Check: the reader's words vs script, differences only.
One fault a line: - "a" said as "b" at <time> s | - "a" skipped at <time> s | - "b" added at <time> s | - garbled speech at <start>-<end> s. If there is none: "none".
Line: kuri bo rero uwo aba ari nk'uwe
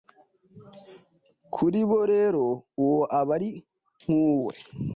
none